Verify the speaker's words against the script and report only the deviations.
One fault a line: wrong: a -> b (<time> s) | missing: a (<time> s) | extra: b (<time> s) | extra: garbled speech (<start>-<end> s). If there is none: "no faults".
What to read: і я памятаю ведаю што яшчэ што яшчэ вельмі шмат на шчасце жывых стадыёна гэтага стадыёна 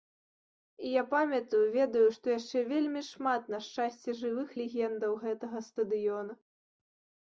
missing: што яшчэ (2.6 s)
wrong: стадыёна -> легендаў (4.6 s)